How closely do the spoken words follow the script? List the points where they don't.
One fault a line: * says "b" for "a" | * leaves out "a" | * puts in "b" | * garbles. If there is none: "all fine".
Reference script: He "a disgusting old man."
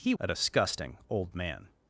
all fine